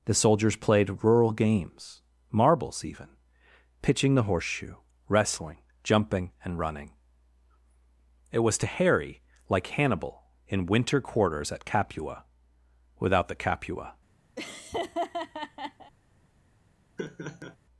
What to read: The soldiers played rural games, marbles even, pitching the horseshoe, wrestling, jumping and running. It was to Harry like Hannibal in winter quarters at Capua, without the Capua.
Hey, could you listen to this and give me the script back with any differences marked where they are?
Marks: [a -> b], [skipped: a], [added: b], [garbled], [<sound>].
The soldiers played rural games, marbles even, pitching the horseshoe, wrestling, jumping and running. It was to Harry like Hannibal in winter quarters at Capua, without the Capua. [laugh] [laugh]